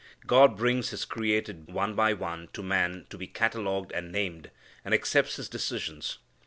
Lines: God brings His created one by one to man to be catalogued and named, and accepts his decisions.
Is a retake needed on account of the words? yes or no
no